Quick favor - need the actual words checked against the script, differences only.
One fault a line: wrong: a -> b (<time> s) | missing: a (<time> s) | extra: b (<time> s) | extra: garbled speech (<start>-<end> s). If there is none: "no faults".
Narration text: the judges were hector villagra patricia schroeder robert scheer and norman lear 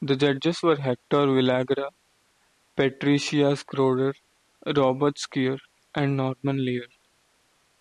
no faults